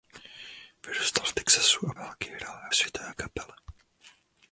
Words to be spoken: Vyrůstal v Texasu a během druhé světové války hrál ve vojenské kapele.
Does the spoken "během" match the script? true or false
false